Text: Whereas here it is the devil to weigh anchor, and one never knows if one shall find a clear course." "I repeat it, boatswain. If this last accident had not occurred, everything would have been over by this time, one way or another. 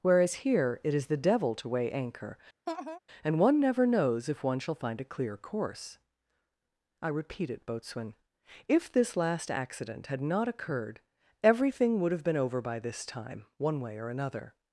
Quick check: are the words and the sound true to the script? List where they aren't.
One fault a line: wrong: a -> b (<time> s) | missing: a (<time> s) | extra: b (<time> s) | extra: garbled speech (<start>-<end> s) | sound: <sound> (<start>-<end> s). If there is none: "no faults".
sound: laugh (2.7-3.0 s)